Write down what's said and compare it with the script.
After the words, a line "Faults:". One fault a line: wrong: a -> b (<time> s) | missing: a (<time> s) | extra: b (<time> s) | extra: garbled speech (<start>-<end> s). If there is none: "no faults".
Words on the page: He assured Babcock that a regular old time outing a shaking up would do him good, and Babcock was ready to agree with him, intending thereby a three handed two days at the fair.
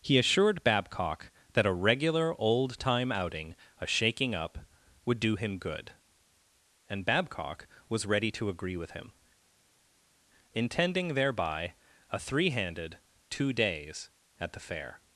He assured Babcock that a regular old time outing a shaking up would do him good, and Babcock was ready to agree with him, intending thereby a three handed two days at the fair.
Faults:
no faults